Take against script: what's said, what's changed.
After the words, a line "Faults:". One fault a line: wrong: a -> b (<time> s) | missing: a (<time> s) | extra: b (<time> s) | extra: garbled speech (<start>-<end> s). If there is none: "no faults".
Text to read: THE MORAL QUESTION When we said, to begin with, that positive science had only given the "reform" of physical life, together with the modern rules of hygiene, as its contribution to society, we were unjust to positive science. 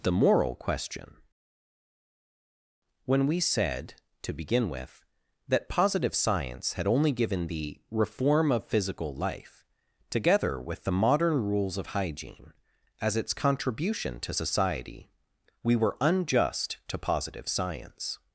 THE MORAL QUESTION When we said, to begin with, that positive science had only given the "reform" of physical life, together with the modern rules of hygiene, as its contribution to society, we were unjust to positive science.
Faults:
no faults